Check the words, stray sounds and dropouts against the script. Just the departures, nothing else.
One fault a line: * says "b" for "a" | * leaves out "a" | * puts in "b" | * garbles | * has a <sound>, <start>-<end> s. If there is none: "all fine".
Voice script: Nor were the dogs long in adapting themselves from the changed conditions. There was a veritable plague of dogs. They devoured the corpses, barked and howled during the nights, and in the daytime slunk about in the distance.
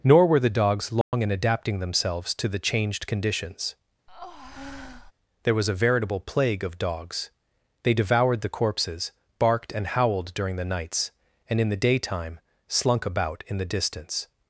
* has a dropout, 1.0-1.1 s
* says "to" for "from"
* has a breath, 4.1-5.1 s